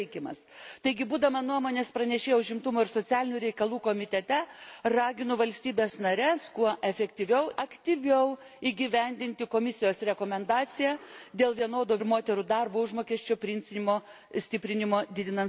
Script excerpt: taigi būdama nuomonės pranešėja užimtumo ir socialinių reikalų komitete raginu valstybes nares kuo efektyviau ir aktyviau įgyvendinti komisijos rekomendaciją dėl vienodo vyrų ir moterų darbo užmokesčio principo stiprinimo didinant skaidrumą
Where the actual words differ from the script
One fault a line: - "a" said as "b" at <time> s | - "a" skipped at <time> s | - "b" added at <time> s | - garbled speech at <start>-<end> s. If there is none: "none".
- "ir" skipped at 7.5 s
- "vyrų" skipped at 12.0 s